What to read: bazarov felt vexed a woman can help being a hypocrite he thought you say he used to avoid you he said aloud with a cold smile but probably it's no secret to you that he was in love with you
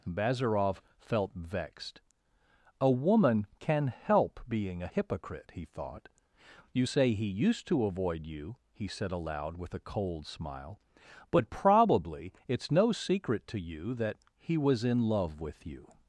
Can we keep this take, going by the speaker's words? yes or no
yes